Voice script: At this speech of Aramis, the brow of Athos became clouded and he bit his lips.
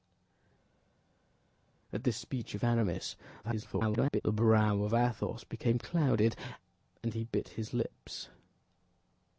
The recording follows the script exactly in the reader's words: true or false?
false